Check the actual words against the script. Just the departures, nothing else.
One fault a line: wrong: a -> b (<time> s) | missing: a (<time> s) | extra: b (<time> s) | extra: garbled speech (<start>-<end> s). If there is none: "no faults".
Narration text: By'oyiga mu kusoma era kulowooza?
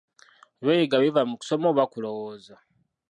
extra: biva (1.0 s)
wrong: era -> oba (1.7 s)